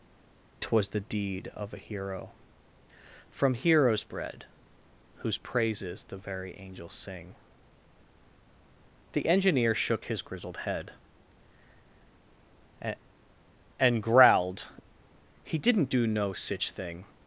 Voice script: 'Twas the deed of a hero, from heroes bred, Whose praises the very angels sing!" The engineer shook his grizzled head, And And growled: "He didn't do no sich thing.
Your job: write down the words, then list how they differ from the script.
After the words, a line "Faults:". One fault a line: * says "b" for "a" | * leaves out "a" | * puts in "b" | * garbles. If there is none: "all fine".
'Twas the deed of a hero, from heroes bred, Whose praises the very angels sing!" The engineer shook his grizzled head, And And growled: "He didn't do no sich thing.
Faults:
all fine